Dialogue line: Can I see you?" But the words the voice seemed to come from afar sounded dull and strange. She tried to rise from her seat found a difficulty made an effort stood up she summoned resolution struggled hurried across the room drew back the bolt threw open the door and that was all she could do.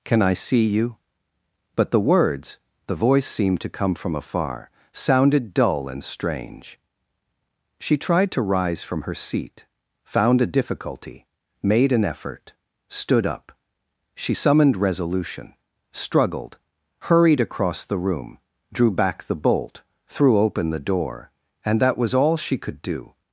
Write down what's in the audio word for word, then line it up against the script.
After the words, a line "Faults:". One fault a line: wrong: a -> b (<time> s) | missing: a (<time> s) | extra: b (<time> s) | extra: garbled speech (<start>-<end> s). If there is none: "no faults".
Can I see you?" But the words the voice seemed to come from afar sounded dull and strange. She tried to rise from her seat found a difficulty made an effort stood up she summoned resolution struggled hurried across the room drew back the bolt threw open the door and that was all she could do.
Faults:
no faults